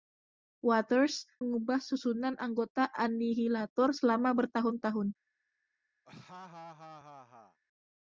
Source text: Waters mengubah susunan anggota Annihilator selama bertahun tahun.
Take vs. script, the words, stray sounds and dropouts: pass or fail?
fail